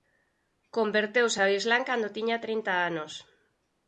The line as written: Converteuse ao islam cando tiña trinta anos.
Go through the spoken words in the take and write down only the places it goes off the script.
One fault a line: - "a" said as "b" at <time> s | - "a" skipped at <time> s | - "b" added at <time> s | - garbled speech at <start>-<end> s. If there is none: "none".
none